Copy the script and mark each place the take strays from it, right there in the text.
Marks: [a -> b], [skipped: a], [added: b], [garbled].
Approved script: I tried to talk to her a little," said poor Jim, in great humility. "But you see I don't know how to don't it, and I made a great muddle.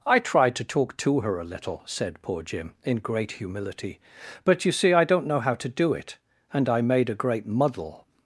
I tried to talk to her a little," said poor Jim, in great humility. "But you see I don't know how to [don't -> do] it, and I made a great muddle.